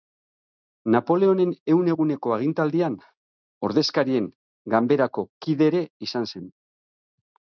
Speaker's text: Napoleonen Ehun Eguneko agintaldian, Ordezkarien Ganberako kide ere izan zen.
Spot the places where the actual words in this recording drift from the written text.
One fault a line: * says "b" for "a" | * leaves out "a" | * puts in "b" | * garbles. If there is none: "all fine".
all fine